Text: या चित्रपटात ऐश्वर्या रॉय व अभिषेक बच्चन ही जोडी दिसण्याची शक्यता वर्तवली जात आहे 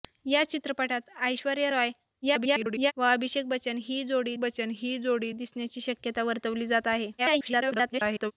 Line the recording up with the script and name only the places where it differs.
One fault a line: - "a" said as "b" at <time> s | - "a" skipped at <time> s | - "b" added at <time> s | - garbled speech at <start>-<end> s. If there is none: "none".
- garbled speech at 2.2-2.9 s
- "बच्चन ही जोडी" added at 4.4 s
- garbled speech at 7.2-8.3 s